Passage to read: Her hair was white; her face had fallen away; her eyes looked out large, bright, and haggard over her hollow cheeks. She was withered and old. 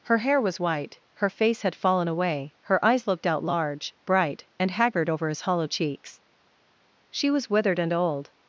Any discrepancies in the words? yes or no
yes